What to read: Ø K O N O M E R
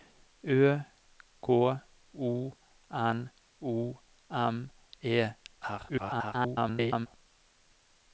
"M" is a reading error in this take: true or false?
false